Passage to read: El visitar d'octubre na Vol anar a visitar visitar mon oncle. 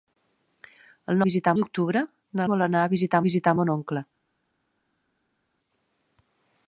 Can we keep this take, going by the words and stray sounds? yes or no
yes